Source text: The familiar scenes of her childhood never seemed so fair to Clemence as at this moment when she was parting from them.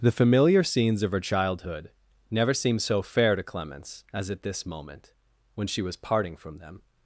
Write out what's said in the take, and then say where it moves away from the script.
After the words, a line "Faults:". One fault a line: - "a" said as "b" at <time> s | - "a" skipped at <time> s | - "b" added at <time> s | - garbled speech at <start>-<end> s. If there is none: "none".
The familiar scenes of her childhood never seemed so fair to Clemence as at this moment when she was parting from them.
Faults:
none